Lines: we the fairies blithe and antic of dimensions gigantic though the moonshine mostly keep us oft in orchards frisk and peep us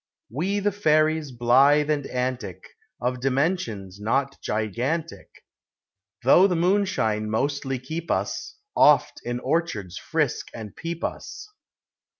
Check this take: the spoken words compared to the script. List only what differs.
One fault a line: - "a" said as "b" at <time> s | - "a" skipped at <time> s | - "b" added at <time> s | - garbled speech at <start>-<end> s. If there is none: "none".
- "not" added at 4.0 s